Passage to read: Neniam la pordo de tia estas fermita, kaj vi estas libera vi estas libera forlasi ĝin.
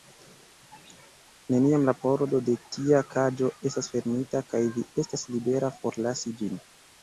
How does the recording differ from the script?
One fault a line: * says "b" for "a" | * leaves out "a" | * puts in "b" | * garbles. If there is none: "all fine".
* puts in "kaĝo"
* leaves out "vi estas libera"